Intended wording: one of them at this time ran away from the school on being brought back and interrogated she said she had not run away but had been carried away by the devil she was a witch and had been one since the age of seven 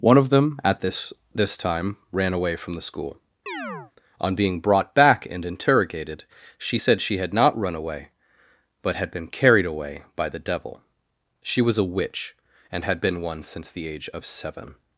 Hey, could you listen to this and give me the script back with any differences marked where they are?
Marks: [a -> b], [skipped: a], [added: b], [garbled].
one of them at this [added: this] time ran away from the school on being brought back and interrogated she said she had not run away but had been carried away by the devil she was a witch and had been one since the age of seven